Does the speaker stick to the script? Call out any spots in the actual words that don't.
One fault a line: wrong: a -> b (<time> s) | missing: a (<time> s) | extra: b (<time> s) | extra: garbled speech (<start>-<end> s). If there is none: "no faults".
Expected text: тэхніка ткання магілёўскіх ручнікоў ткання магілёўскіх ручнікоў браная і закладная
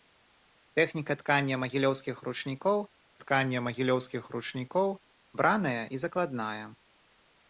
no faults